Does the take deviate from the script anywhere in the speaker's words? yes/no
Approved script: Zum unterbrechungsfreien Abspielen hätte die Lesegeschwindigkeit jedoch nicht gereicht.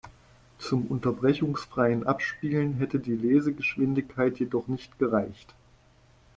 no